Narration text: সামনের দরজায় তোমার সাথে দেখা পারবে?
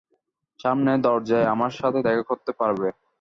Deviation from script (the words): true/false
true